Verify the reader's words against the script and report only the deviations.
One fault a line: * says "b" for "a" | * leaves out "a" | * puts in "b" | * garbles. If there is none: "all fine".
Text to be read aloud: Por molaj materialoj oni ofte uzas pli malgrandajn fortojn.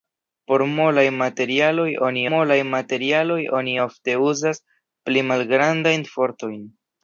* puts in "molaj materialoj oni"